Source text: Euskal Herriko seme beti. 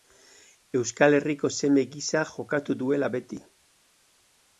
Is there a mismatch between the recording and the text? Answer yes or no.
yes